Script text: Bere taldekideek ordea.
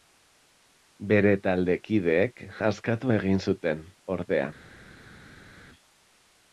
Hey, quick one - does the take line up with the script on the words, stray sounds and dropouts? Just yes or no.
no